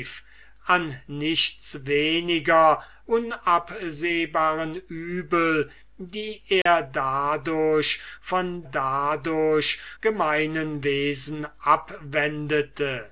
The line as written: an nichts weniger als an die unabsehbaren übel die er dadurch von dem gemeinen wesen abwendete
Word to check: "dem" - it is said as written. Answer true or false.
false